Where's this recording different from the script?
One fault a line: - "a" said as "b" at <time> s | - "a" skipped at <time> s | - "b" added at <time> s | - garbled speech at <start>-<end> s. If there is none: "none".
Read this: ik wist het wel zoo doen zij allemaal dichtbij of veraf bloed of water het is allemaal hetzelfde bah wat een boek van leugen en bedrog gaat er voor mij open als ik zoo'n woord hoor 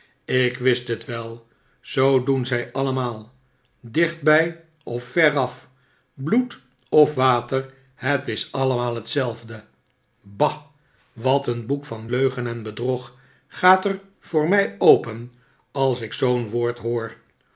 none